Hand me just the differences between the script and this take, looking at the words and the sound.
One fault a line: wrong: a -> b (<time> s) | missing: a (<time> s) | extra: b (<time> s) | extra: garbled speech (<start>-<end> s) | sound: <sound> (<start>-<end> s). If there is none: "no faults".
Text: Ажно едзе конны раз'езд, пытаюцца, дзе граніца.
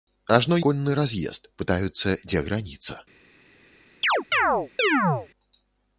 missing: едзе (0.6 s)
sound: chirp (4.0-5.3 s)